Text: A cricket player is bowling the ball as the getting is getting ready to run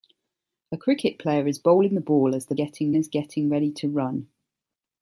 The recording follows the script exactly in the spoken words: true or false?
true